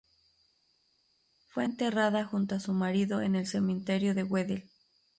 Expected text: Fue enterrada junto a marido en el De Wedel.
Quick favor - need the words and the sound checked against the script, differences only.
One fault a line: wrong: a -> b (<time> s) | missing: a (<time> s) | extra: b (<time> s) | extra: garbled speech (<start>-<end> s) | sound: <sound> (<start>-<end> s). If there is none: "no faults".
extra: su (2.6 s)
extra: Cementerio (3.5 s)